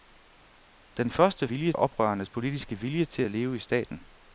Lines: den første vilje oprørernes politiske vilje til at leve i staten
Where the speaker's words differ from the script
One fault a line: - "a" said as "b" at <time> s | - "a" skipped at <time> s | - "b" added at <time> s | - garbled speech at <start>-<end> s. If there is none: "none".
none